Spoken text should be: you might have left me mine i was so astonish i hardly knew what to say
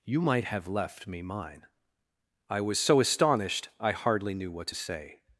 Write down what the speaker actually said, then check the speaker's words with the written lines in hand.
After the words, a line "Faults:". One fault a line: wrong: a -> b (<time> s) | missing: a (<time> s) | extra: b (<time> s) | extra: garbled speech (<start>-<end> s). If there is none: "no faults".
you might have left me mine i was so astonished i hardly knew what to say
Faults:
wrong: astonish -> astonished (3.0 s)